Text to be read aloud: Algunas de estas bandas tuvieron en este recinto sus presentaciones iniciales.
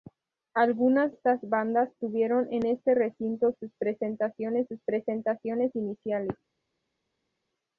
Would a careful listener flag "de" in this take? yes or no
yes